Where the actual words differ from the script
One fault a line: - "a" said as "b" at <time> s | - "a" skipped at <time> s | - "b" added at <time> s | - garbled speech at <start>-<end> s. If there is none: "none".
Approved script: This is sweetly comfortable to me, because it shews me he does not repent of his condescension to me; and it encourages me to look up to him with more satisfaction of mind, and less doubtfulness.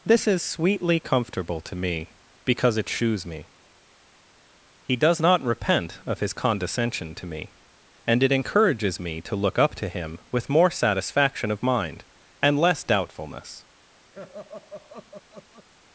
none